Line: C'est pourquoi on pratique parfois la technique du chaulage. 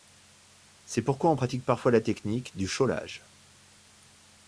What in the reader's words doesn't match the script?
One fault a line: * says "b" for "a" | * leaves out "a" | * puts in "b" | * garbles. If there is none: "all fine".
all fine